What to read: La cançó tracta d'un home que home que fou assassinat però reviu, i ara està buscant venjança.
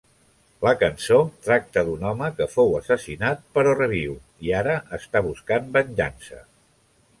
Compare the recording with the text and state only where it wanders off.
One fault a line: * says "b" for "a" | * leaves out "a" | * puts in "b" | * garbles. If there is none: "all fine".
* leaves out "home que"